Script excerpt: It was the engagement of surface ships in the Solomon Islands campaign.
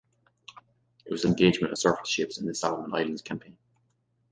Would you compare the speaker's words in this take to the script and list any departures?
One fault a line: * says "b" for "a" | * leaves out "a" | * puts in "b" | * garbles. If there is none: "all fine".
all fine